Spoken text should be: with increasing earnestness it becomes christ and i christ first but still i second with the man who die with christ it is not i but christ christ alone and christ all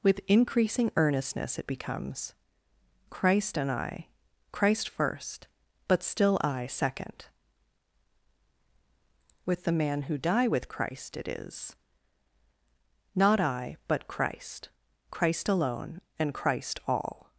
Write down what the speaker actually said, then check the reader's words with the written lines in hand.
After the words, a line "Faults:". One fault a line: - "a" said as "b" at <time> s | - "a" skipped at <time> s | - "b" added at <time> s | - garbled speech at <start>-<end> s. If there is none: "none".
with increasing earnestness it becomes christ and i christ first but still i second with the man who die with christ it is not i but christ christ alone and christ all
Faults:
none